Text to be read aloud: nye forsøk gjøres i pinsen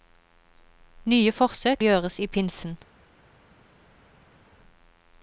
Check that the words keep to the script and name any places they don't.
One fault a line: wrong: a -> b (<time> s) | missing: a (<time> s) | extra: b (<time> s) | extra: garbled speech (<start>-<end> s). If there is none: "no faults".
no faults